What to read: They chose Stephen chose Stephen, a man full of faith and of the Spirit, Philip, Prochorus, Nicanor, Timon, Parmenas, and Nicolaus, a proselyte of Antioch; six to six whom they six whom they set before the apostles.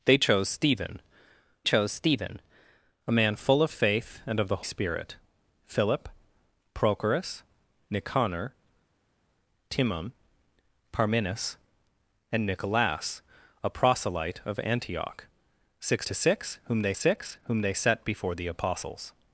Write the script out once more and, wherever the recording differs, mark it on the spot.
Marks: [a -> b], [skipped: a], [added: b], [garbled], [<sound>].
They chose Stephen chose Stephen, a man full of faith and of the Spirit, Philip, Prochorus, Nicanor, Timon, Parmenas, and Nicolaus, a proselyte of Antioch; six to six whom they six whom they set before the apostles.